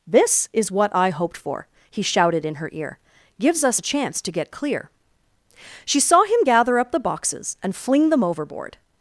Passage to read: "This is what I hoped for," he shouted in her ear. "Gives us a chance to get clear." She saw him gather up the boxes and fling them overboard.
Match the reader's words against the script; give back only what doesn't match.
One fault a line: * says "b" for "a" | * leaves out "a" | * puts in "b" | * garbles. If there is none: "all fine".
all fine